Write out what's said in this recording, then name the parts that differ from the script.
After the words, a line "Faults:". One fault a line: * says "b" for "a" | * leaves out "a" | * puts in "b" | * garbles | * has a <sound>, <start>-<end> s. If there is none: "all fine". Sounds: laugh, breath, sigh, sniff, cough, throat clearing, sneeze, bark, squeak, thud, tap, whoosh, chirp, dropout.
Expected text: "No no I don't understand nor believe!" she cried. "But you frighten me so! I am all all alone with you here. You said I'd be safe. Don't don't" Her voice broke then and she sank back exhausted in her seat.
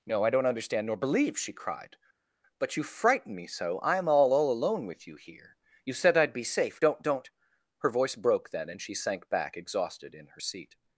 "No I don't understand nor believe!" she cried. "But you frighten me so! I am all all alone with you here. You said I'd be safe. Don't don't" Her voice broke then and she sank back exhausted in her seat.
Faults:
* leaves out "no"